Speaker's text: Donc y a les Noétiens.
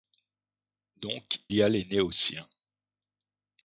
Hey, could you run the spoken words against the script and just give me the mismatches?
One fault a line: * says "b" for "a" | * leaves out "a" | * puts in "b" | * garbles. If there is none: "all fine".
all fine